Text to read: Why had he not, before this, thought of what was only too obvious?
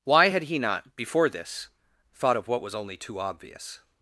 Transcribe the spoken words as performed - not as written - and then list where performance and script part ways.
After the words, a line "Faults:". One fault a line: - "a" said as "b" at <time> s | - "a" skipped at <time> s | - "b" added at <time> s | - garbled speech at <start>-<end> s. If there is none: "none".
Why had he not, before this, thought of what was only too obvious?
Faults:
none